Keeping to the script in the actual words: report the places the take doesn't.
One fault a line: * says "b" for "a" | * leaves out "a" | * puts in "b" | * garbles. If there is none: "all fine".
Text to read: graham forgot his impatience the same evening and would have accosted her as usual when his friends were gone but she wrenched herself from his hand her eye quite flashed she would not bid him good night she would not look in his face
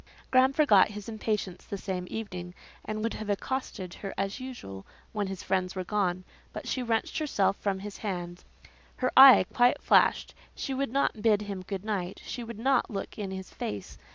all fine